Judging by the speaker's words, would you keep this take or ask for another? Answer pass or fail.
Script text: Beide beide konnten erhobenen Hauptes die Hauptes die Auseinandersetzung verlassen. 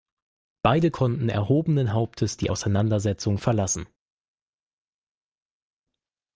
fail